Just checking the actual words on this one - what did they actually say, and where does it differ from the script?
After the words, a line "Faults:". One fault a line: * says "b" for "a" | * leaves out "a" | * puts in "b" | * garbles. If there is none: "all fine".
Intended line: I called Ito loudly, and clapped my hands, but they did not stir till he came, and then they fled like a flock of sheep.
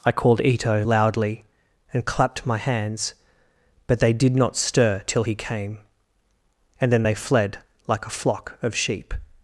I called Ito loudly, and clapped my hands, but they did not stir till he came, and then they fled like a flock of sheep.
Faults:
all fine